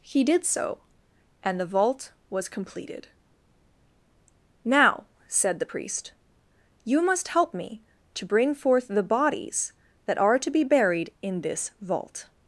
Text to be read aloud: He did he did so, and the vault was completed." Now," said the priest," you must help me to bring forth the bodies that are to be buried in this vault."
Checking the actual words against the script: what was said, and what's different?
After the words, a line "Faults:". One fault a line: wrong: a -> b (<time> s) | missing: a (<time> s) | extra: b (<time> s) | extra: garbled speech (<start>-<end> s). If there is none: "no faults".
He did so, and the vault was completed." Now," said the priest," you must help me to bring forth the bodies that are to be buried in this vault."
Faults:
missing: he did (0.5 s)